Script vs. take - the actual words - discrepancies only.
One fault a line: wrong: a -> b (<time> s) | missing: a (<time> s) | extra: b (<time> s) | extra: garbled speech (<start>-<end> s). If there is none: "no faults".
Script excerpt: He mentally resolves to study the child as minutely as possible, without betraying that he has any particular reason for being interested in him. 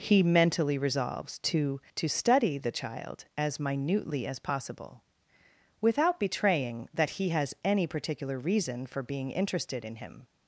extra: to (2.0 s)